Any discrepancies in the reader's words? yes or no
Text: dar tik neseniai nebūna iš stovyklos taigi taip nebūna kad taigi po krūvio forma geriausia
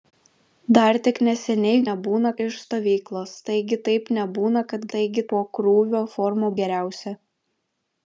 no